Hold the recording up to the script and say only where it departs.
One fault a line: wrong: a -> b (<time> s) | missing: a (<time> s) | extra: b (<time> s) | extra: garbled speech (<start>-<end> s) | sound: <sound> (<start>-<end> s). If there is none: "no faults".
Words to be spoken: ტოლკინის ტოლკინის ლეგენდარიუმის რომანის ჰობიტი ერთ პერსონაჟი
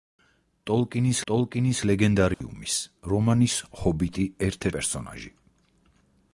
sound: dropout (2.3-2.4 s)